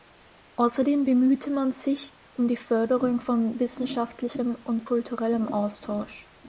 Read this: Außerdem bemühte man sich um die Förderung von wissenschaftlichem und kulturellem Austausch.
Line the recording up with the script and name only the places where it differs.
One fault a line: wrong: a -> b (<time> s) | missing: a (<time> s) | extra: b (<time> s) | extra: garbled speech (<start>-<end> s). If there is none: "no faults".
no faults